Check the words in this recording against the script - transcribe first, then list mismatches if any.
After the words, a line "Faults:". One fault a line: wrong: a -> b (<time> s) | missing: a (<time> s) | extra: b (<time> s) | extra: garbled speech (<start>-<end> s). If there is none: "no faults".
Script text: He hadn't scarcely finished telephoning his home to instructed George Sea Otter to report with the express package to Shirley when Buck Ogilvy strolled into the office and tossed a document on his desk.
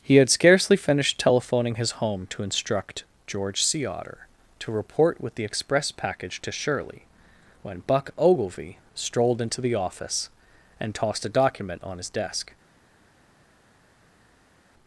He had scarcely finished telephoning his home to instruct George Sea Otter to report with the express package to Shirley when Buck Ogilvy strolled into the office and tossed a document on his desk.
Faults:
wrong: hadn't -> had (0.1 s)
wrong: instructed -> instruct (2.4 s)